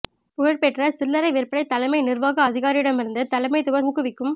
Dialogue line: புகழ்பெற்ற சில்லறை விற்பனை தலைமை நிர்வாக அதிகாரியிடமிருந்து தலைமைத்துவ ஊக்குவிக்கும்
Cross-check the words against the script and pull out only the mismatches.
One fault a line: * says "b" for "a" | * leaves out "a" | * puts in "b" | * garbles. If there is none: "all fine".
all fine